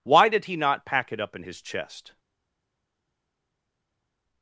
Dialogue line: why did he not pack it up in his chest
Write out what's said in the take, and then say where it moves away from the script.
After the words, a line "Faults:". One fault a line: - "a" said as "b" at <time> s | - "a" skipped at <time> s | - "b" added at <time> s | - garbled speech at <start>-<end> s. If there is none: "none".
why did he not pack it up in his chest
Faults:
none